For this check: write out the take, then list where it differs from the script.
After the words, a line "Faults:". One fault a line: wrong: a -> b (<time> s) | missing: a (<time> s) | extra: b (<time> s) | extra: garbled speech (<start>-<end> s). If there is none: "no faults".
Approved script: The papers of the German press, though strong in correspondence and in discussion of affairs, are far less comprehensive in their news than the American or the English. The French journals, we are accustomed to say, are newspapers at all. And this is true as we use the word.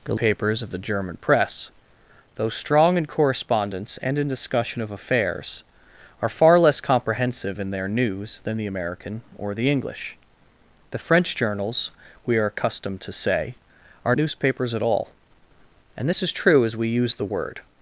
The papers of the German press, though strong in correspondence and in discussion of affairs, are far less comprehensive in their news than the American or the English. The French journals, we are accustomed to say, are newspapers at all. And this is true as we use the word.
Faults:
no faults